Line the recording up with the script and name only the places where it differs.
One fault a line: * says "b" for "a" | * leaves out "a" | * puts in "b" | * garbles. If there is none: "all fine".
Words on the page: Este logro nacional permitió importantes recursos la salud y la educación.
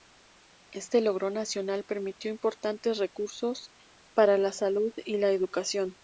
* puts in "para"